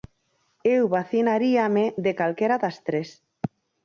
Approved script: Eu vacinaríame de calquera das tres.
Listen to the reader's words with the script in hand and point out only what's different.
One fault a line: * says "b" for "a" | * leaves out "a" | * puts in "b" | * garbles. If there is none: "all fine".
all fine